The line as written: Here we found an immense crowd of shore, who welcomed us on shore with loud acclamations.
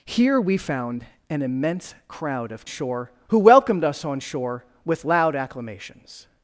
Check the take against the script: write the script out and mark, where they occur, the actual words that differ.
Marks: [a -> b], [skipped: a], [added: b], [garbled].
Here we found an immense crowd of shore, who welcomed us on shore with loud acclamations.